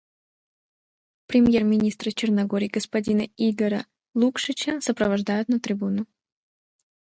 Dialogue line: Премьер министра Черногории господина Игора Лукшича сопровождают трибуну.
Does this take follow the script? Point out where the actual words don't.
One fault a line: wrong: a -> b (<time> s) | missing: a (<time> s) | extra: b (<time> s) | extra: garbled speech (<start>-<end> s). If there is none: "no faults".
extra: на (5.5 s)